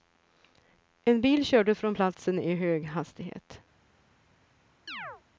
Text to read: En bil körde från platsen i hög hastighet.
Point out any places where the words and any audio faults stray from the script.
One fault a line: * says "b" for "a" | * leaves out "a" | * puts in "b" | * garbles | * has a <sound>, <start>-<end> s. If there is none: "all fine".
* has a chirp, 4.9-5.2 s